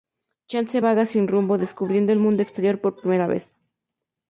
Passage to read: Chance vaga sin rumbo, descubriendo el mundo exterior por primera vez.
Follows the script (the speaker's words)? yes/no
yes